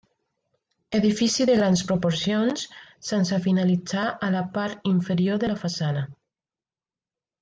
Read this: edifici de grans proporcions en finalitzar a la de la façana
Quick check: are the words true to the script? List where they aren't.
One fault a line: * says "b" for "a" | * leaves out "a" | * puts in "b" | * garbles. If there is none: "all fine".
* says "sense" for "en"
* puts in "part inferior"